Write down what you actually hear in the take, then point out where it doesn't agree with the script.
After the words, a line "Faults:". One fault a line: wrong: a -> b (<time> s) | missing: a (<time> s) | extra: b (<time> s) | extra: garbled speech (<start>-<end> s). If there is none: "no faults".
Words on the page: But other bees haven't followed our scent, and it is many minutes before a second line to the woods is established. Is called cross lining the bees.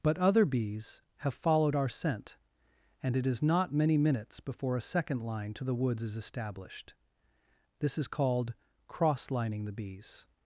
But other bees have followed our scent, and it is not many minutes before a second line to the woods is established. This is called cross lining the bees.
Faults:
wrong: haven't -> have (1.2 s)
extra: not (3.4 s)
extra: This (7.8 s)